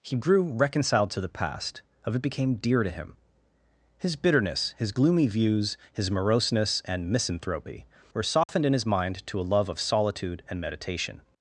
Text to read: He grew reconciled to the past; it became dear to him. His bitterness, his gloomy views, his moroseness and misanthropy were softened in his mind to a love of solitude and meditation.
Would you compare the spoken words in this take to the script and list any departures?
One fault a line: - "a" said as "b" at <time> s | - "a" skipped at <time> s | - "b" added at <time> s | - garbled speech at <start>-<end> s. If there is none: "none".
- "of" added at 2.0 s